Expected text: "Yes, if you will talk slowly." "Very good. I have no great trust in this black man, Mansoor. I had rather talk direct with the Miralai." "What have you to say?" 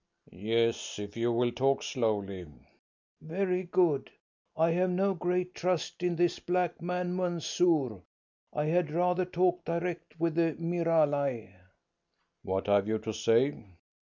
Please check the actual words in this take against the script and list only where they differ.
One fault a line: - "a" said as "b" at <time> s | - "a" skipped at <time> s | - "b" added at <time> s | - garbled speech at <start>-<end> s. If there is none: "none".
none